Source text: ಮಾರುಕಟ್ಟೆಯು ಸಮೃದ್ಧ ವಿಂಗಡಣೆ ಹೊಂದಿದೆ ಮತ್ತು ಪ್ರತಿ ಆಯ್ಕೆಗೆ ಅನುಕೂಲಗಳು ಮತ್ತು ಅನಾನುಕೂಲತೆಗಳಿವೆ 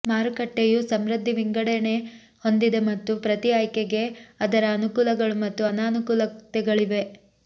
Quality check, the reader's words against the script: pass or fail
fail